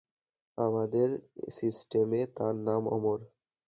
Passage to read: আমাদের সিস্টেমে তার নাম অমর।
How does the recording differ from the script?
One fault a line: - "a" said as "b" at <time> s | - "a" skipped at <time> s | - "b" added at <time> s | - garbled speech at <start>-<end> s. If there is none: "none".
none